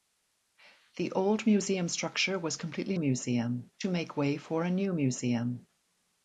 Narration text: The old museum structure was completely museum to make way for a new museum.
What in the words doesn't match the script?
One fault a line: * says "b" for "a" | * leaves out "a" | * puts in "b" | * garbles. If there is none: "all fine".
all fine